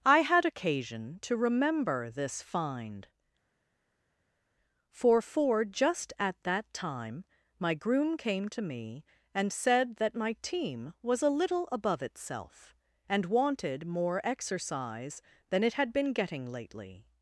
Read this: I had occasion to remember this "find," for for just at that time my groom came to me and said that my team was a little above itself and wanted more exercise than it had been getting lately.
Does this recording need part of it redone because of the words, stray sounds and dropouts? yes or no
no